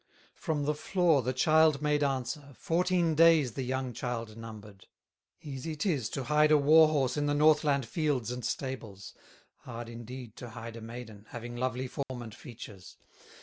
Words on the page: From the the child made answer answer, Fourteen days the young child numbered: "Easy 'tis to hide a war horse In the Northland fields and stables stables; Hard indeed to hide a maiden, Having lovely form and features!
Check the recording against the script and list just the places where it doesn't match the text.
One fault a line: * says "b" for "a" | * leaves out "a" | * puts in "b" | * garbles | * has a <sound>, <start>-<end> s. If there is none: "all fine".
* puts in "floor"
* leaves out "answer"
* leaves out "stables"
* has a dropout, 12.0-12.1 s